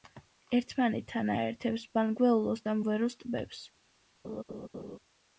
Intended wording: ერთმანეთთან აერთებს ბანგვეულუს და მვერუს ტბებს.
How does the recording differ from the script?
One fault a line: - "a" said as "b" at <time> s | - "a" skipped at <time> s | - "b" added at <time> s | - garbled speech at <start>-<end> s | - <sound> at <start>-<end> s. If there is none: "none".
- laugh at 4.2-5.0 s